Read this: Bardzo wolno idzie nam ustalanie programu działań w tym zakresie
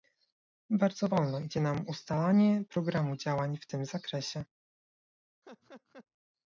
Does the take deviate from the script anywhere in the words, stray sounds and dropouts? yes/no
yes